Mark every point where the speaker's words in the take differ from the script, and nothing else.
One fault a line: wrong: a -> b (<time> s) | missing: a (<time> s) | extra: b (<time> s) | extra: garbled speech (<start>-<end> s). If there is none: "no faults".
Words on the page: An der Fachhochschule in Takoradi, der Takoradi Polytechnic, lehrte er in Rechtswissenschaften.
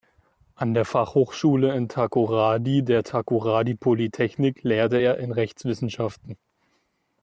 no faults